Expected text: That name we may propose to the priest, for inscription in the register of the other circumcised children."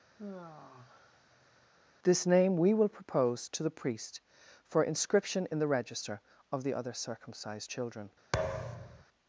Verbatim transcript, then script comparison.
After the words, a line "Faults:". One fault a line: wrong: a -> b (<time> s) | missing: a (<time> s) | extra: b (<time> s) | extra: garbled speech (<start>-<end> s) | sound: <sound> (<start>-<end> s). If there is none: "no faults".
This name we will propose to the priest, for inscription in the register of the other circumcised children."
Faults:
sound: sigh (0.2-1.7 s)
wrong: That -> This (2.0 s)
wrong: may -> will (2.7 s)
sound: thud (8.3-9.0 s)